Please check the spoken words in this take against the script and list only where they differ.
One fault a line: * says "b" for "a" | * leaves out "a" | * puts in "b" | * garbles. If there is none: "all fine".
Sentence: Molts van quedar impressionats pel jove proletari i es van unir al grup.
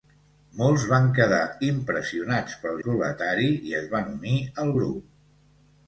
* leaves out "jove"